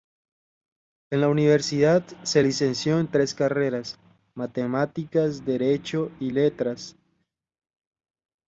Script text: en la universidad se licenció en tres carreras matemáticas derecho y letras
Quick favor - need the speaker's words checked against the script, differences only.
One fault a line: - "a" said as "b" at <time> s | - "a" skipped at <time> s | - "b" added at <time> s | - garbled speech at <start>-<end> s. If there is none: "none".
none